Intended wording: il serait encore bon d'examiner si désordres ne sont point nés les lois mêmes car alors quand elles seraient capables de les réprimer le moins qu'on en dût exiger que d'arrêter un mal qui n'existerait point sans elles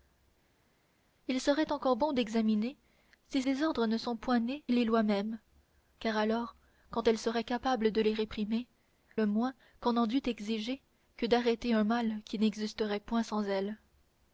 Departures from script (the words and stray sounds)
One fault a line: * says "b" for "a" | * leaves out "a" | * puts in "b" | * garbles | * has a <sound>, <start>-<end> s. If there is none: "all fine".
all fine